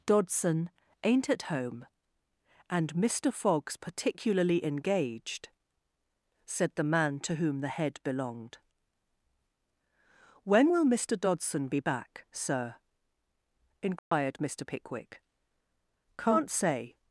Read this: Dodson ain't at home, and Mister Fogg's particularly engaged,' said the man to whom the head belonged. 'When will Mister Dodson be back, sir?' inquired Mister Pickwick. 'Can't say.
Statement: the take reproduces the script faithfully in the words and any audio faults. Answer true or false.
false